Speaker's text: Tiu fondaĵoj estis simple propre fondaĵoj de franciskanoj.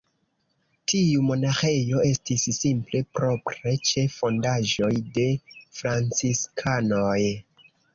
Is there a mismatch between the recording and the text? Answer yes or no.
yes